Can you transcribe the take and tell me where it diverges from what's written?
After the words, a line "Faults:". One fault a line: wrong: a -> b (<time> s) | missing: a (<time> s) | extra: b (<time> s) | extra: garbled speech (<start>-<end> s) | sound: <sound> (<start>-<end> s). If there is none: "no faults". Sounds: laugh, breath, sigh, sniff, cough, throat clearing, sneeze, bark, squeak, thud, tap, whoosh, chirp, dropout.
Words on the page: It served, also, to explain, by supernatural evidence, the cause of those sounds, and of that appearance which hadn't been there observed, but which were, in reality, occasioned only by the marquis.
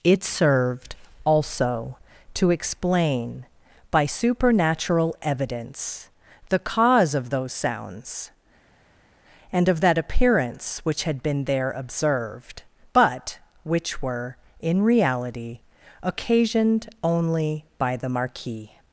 It served, also, to explain, by supernatural evidence, the cause of those sounds, and of that appearance which had been there observed, but which were, in reality, occasioned only by the marquis.
Faults:
wrong: hadn't -> had (11.0 s)